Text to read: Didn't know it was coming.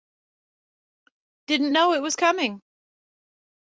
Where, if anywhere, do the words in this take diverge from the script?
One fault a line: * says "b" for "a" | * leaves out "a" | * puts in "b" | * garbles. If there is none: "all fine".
all fine